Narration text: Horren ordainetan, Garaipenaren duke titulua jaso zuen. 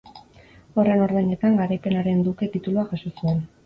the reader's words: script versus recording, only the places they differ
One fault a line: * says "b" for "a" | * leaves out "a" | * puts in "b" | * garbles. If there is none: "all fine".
all fine